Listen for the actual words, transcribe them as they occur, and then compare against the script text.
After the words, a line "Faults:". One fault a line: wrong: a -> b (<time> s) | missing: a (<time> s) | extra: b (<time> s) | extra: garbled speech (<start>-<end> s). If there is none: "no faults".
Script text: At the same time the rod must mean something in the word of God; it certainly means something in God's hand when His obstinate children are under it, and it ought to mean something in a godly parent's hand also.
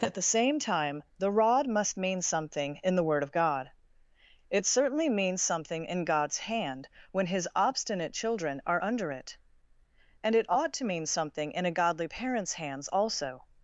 At the same time the rod must mean something in the word of God; it certainly means something in God's hand when His obstinate children are under it, and it ought to mean something in a godly parent's hands also.
Faults:
wrong: hand -> hands (12.5 s)